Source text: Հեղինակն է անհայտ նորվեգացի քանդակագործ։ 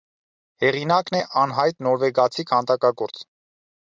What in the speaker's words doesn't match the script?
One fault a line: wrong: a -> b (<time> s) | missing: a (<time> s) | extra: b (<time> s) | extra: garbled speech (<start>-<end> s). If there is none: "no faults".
no faults